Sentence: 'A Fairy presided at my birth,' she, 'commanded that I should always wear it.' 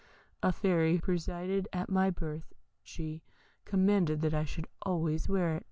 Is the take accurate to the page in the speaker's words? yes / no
yes